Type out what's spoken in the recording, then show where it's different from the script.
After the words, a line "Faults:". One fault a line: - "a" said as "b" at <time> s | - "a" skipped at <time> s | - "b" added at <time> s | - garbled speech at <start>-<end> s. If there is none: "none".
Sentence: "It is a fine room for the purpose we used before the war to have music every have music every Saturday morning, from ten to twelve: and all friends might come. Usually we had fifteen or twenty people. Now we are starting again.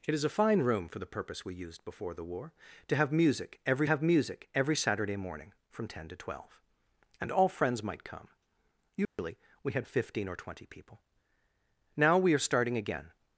"It is a fine room for the purpose we used before the war to have music every have music every Saturday morning, from ten to twelve: and all friends might come. Usually we had fifteen or twenty people. Now we are starting again.
Faults:
none